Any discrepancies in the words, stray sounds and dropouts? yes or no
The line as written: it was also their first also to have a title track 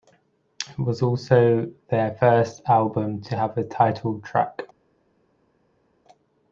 yes